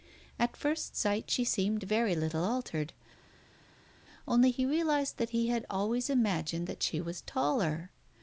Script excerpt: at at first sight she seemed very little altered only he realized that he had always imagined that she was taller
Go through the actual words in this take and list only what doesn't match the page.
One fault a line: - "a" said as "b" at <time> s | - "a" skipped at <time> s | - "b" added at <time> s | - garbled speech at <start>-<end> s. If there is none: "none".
- "at" skipped at 0.6 s